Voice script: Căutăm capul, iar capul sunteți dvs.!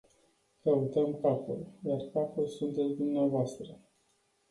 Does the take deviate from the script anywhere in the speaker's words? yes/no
no